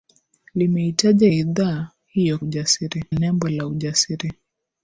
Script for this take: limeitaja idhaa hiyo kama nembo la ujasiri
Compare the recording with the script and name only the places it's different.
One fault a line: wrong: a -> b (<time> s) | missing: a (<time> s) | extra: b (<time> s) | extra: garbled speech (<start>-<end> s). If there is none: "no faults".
wrong: kama -> ujasiri (2.4 s)